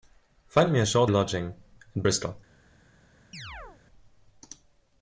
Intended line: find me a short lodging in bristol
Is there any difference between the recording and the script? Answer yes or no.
no